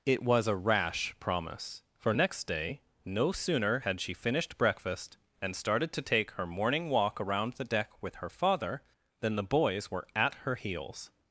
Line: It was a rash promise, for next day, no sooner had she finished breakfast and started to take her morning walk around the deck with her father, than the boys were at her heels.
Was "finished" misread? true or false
false